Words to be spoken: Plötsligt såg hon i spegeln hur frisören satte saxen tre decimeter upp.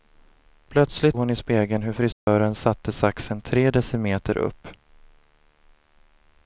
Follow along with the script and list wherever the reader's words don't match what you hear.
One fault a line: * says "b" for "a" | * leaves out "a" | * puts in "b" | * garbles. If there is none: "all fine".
* leaves out "såg"